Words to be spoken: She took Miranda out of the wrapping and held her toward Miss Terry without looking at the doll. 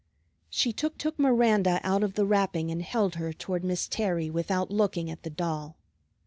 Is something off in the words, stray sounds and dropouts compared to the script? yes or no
yes